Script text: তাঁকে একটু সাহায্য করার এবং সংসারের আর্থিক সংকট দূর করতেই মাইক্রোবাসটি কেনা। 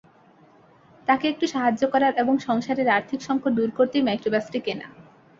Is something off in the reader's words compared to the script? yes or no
no